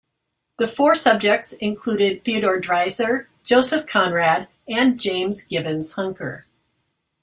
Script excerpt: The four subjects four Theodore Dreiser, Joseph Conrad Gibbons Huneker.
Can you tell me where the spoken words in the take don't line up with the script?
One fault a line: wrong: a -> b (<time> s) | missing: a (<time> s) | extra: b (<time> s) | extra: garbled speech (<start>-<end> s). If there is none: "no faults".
wrong: four -> included (1.5 s)
extra: and James (4.7 s)